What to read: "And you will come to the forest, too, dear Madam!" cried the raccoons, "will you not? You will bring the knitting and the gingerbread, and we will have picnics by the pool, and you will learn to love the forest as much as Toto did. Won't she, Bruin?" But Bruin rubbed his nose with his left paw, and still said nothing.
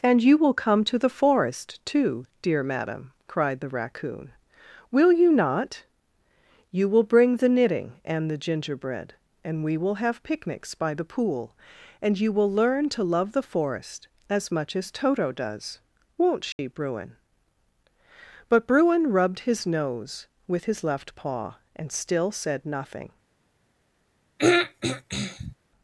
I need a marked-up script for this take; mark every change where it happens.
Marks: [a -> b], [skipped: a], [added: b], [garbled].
"And you will come to the forest, too, dear Madam!" cried the [raccoons, -> raccoon] "will you not? You will bring the knitting and the gingerbread, and we will have picnics by the pool, and you will learn to love the forest as much as Toto [did. -> does] Won't she, Bruin?" But Bruin rubbed his nose with his left paw, and still said nothing.